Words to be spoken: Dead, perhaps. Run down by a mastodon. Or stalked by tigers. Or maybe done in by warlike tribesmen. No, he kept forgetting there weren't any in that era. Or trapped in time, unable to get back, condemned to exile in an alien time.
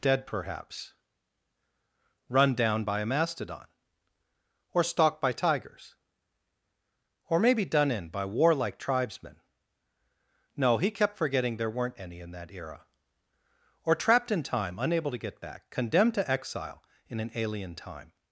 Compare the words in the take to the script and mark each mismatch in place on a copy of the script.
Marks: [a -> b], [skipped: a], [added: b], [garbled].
Dead, perhaps. Run down by a mastodon. Or stalked by tigers. Or maybe done in by warlike tribesmen. No, he kept forgetting there weren't any in that era. Or trapped in time, unable to get back, condemned to exile in an alien time.